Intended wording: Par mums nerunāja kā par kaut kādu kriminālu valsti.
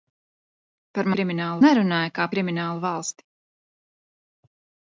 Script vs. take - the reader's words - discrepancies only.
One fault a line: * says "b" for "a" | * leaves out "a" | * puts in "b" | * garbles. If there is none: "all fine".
* says "kriminālu" for "mums"
* leaves out "par kaut kādu"